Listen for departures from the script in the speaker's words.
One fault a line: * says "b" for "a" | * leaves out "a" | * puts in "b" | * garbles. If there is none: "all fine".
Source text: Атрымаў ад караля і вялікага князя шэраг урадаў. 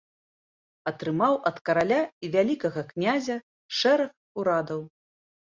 all fine